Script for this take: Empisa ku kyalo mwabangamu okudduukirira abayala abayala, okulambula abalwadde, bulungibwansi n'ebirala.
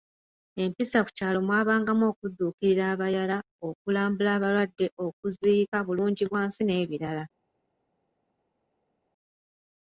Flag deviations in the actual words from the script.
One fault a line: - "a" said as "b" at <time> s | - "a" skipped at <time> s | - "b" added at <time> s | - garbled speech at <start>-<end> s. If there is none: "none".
- "abayala" skipped at 3.4 s
- "okuziika" added at 5.0 s